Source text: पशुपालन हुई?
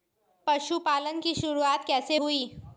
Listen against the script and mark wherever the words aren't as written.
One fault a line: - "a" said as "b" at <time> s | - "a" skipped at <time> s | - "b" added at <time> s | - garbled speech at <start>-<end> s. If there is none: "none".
- "की शुरुआत कैसे" added at 1.2 s